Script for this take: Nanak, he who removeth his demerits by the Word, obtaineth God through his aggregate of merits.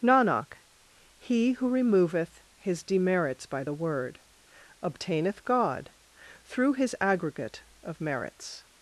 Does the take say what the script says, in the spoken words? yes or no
yes